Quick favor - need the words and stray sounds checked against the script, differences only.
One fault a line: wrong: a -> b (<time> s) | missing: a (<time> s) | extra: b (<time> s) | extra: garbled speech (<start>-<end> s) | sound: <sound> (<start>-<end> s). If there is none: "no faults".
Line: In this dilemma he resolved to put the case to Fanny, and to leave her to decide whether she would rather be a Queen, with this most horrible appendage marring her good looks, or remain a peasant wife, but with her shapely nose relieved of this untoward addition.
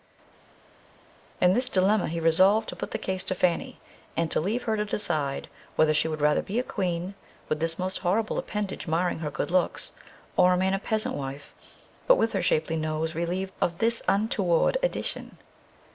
no faults